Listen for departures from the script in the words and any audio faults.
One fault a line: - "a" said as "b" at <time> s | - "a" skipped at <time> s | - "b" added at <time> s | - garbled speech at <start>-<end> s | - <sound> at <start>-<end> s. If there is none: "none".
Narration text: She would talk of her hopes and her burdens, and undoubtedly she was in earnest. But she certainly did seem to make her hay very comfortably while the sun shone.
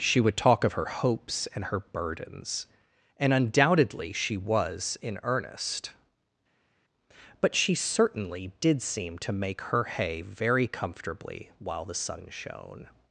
none